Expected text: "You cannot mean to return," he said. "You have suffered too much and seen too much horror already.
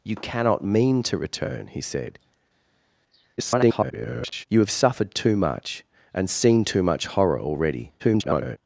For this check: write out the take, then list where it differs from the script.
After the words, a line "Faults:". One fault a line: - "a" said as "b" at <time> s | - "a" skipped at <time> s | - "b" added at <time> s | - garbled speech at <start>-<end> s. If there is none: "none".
"You cannot mean to return," he said. [garbled] "You have suffered too much and seen too much horror already. [garbled]
Faults:
- garbled speech at 3.4-4.5 s
- garbled speech at 8.0-8.6 s